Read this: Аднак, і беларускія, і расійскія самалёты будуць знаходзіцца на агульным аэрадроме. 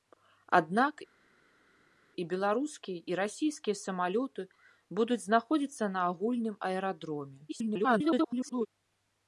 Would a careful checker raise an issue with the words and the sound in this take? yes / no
yes